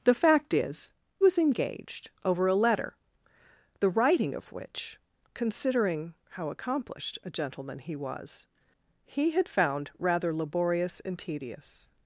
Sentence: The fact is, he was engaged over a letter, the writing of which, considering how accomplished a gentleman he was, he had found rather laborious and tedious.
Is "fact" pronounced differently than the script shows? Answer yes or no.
no